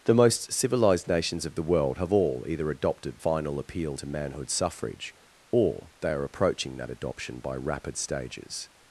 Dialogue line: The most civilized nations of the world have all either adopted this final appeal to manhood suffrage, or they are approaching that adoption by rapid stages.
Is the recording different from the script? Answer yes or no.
yes